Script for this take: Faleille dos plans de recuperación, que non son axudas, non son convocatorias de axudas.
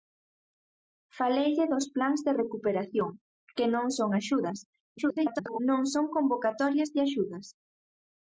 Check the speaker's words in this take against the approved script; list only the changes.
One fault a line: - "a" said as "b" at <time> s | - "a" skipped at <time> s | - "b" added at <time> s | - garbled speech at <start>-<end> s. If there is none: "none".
- garbled speech at 5.0-5.6 s